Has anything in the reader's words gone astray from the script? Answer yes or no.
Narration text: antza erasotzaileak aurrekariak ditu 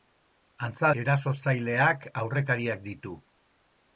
no